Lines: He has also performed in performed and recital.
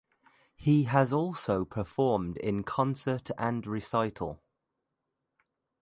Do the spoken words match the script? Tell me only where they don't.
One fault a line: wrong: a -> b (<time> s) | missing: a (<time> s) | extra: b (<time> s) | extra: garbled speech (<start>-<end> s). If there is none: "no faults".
wrong: performed -> concert (2.6 s)